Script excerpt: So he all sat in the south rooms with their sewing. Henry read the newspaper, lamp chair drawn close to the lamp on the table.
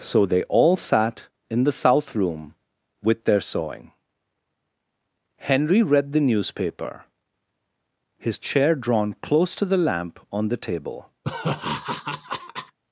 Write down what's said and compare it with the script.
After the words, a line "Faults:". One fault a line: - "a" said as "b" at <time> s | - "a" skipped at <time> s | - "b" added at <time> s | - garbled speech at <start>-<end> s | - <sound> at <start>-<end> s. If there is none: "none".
So they all sat in the south room with their sewing. Henry read the newspaper, his chair drawn close to the lamp on the table.
Faults:
- "he" said as "they" at 0.2 s
- "rooms" said as "room" at 2.1 s
- "lamp" said as "his" at 8.2 s
- laugh at 11.2-12.8 s